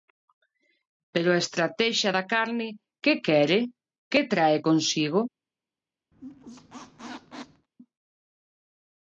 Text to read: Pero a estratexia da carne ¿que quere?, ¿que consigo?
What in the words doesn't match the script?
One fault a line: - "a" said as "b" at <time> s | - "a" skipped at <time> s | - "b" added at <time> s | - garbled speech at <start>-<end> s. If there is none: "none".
- "trae" added at 4.3 s